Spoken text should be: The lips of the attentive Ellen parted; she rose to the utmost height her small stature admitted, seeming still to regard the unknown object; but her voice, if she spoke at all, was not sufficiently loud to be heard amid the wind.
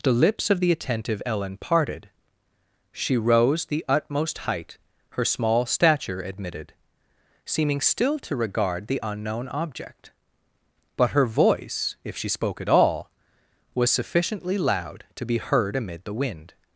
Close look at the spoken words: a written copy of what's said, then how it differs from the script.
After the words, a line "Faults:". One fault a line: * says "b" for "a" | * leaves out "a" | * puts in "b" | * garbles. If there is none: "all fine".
The lips of the attentive Ellen parted; she rose the utmost height her small stature admitted, seeming still to regard the unknown object; but her voice, if she spoke at all, was sufficiently loud to be heard amid the wind.
Faults:
* leaves out "to"
* leaves out "not"